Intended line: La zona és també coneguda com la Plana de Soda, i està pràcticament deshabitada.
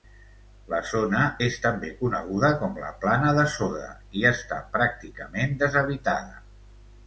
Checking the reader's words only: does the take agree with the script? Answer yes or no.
yes